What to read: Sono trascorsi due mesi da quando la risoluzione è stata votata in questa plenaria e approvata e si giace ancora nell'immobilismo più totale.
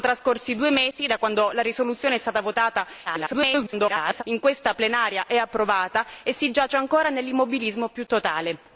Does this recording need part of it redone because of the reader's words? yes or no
yes